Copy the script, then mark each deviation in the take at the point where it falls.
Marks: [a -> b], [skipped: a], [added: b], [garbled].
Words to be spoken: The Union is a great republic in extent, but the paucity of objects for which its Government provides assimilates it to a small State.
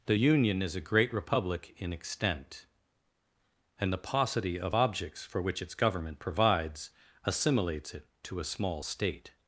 The Union is a great republic in extent, [but -> and] the paucity of objects for which its Government provides assimilates it to a small State.